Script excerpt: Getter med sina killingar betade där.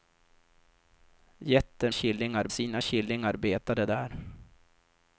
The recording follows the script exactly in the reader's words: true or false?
false